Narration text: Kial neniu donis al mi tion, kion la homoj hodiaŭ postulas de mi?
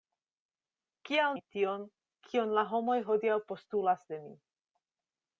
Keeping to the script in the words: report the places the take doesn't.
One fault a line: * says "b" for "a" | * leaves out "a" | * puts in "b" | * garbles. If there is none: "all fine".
* leaves out "neniu donis al"